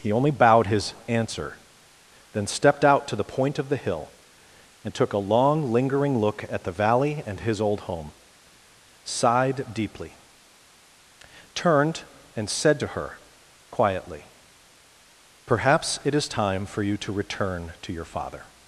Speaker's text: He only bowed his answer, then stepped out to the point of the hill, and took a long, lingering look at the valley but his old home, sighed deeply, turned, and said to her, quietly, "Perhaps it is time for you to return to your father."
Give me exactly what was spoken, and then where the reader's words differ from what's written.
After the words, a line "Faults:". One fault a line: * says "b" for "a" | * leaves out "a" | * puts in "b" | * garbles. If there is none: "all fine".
He only bowed his answer, then stepped out to the point of the hill, and took a long, lingering look at the valley and his old home, sighed deeply, turned, and said to her, quietly, "Perhaps it is time for you to return to your father."
Faults:
* says "and" for "but"